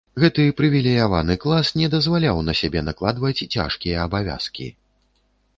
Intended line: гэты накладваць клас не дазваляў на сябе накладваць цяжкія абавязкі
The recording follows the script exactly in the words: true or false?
false